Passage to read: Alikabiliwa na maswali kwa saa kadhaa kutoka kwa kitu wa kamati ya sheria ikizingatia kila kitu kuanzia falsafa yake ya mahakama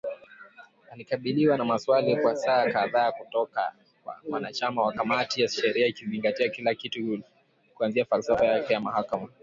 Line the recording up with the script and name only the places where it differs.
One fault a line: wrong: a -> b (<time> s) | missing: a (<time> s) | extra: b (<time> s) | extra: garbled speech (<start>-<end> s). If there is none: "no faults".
wrong: kitu -> wanachama (4.3 s)